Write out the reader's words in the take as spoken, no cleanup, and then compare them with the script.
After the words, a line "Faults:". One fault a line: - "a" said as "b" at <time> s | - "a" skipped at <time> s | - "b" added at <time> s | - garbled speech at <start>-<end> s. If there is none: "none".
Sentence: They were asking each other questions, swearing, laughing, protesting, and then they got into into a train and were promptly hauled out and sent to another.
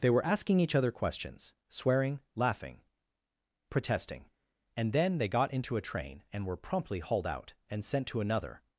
They were asking each other questions, swearing, laughing, protesting, and then they got into a train and were promptly hauled out and sent to another.
Faults:
- "into" skipped at 5.8 s